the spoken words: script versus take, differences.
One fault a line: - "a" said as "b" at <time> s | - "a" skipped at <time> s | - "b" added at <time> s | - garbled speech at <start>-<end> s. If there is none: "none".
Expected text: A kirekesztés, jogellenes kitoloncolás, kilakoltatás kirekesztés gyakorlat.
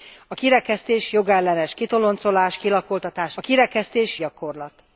none